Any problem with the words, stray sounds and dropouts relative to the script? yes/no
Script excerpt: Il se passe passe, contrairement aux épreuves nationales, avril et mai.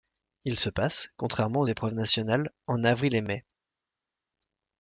yes